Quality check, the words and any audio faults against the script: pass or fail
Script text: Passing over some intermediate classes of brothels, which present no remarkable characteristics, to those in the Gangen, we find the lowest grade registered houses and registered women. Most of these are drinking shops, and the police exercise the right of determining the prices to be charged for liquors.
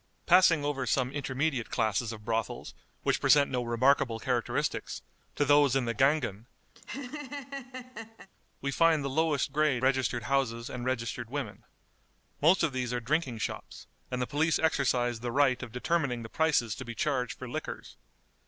fail